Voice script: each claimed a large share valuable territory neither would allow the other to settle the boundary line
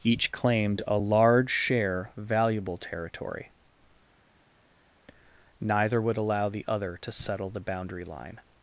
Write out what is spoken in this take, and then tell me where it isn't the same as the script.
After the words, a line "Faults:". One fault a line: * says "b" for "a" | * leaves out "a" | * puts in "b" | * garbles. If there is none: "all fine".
each claimed a large share valuable territory neither would allow the other to settle the boundary line
Faults:
all fine